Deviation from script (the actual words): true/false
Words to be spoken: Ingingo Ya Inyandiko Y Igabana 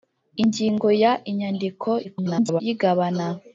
true